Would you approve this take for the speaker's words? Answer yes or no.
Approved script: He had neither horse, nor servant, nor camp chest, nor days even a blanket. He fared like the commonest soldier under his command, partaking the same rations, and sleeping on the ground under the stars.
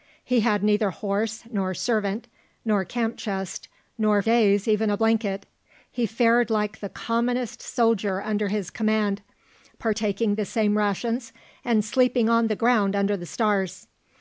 yes